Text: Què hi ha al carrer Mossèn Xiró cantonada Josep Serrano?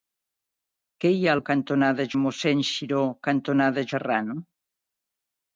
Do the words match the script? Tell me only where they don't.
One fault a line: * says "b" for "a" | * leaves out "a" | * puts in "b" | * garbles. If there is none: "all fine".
* says "cantonada" for "carrer"
* leaves out "Josep"